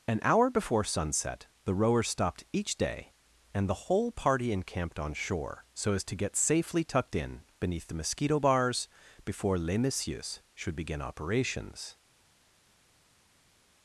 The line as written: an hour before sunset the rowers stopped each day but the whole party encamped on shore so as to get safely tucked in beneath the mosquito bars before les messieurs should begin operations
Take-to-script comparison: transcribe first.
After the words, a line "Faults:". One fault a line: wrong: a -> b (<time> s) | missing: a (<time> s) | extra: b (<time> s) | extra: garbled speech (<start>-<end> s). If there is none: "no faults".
an hour before sunset the rowers stopped each day and the whole party encamped on shore so as to get safely tucked in beneath the mosquito bars before les messieurs should begin operations
Faults:
wrong: but -> and (3.5 s)